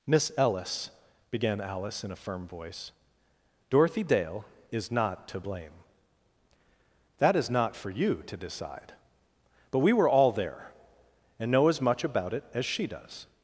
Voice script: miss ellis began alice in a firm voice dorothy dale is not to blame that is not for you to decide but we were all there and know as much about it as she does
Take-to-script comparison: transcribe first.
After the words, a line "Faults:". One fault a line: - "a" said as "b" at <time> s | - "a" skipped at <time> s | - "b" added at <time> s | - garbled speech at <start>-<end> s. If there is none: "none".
miss ellis began alice in a firm voice dorothy dale is not to blame that is not for you to decide but we were all there and know as much about it as she does
Faults:
none